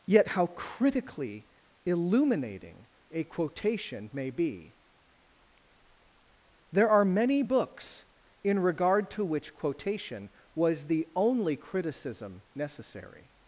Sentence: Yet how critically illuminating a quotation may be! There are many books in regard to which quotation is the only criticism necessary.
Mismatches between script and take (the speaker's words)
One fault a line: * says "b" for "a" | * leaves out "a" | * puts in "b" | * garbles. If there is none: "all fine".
* says "was" for "is"